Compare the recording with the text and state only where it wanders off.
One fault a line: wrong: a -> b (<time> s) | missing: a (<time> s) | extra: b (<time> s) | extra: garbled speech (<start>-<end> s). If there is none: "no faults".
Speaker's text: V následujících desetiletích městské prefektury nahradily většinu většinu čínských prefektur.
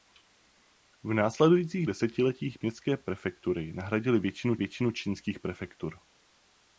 no faults